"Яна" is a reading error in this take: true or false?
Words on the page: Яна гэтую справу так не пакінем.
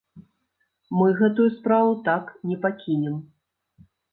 true